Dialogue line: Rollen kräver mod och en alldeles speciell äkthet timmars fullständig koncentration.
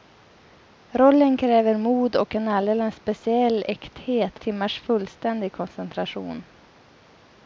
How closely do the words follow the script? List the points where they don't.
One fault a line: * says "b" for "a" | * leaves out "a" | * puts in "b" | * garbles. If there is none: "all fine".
all fine